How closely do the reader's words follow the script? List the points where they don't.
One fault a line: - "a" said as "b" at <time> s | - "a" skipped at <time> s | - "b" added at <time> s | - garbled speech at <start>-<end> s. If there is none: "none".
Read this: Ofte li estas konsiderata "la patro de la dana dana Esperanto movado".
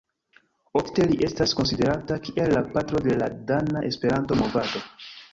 - "kiel" added at 2.3 s
- "dana" skipped at 3.9 s